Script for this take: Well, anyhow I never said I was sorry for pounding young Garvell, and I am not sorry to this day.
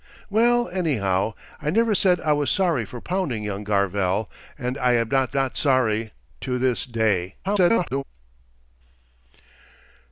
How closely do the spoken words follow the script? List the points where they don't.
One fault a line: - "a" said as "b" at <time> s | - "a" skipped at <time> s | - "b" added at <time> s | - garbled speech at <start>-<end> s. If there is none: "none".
- "not" added at 5.3 s
- garbled speech at 7.4-8.0 s